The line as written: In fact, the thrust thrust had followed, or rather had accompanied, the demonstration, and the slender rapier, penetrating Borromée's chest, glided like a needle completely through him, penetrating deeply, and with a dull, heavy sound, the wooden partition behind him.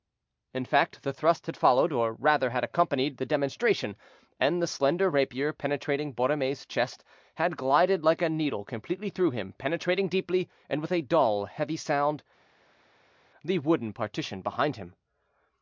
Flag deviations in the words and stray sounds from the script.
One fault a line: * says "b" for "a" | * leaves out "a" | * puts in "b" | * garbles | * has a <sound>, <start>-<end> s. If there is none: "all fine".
* leaves out "thrust"
* puts in "had"